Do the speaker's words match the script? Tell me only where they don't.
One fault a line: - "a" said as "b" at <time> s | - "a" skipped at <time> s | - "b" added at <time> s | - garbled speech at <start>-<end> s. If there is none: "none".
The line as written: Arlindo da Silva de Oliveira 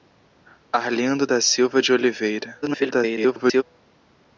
- garbled speech at 2.6-3.6 s